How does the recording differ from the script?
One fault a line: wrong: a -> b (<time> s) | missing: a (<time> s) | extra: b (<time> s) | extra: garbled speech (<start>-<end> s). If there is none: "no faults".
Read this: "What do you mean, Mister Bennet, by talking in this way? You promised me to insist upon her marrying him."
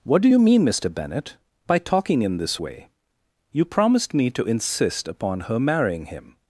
no faults